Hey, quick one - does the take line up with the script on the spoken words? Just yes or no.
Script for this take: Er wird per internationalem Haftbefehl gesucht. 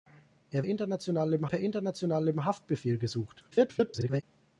no